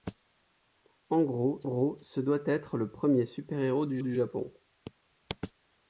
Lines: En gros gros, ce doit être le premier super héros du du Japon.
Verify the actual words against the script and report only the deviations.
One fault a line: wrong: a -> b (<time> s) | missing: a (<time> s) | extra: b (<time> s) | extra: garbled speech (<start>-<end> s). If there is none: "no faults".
no faults